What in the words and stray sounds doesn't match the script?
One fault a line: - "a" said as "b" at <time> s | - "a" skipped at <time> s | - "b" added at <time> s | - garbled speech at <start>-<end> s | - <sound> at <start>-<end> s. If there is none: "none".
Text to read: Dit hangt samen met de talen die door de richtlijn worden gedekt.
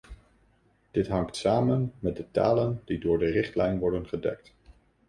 none